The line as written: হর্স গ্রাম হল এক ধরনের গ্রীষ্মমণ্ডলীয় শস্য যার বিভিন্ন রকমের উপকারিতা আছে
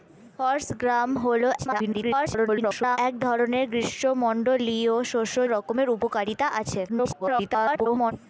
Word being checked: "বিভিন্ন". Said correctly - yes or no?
no